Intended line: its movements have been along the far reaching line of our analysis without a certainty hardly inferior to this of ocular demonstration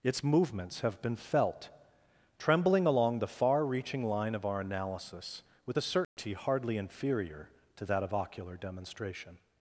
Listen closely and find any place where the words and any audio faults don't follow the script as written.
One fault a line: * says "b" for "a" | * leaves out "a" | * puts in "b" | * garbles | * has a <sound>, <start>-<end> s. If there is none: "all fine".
* puts in "felt trembling"
* says "with" for "without"
* has a dropout, 6.0-6.2 s
* says "that" for "this"